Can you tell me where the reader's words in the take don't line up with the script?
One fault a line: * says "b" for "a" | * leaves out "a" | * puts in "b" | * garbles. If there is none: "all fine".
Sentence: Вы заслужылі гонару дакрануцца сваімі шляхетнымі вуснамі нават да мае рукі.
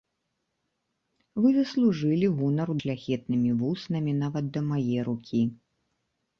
* leaves out "дакрануцца сваімі"